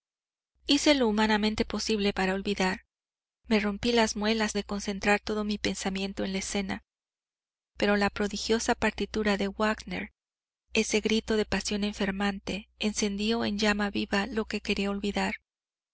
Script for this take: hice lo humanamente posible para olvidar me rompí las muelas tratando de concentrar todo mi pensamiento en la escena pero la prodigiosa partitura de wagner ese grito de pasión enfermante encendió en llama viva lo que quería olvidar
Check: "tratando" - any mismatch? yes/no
yes